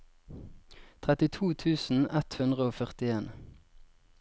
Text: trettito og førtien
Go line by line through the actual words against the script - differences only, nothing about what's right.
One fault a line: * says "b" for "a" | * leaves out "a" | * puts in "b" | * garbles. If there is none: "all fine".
* puts in "tusen ett hundre"